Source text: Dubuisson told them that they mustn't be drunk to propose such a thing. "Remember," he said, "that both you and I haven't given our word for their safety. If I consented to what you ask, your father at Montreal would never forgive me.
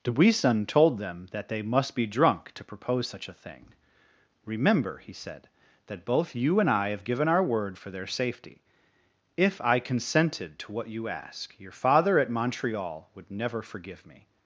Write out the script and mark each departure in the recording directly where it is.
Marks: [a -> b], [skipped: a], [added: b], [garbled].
Dubuisson told them that they [mustn't -> must] be drunk to propose such a thing. "Remember," he said, "that both you and I [haven't -> have] given our word for their safety. If I consented to what you ask, your father at Montreal would never forgive me.